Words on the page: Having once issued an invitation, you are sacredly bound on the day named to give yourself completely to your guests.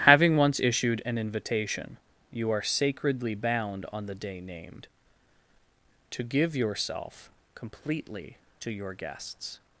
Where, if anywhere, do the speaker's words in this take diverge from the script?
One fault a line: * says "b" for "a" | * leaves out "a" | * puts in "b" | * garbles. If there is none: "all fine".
all fine